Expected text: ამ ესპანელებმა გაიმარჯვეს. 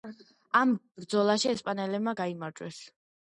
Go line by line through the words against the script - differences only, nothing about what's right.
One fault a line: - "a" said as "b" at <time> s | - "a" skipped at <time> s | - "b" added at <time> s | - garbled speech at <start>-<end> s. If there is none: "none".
- "ბრძოლაში" added at 1.0 s